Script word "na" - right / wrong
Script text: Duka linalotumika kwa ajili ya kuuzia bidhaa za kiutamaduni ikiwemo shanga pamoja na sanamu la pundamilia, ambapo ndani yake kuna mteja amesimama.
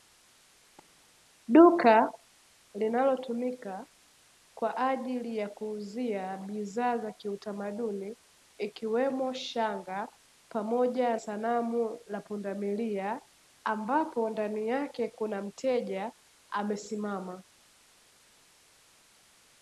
wrong